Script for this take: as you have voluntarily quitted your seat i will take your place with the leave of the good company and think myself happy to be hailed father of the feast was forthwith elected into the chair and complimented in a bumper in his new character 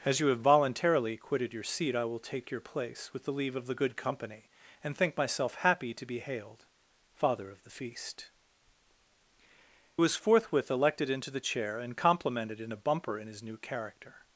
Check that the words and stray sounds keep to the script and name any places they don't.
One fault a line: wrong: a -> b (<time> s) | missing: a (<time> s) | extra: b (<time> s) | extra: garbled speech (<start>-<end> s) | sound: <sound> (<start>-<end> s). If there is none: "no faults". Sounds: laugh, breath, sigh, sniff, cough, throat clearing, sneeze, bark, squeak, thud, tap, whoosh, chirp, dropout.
no faults